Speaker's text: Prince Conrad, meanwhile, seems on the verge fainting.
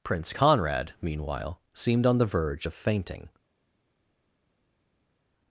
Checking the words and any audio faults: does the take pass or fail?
fail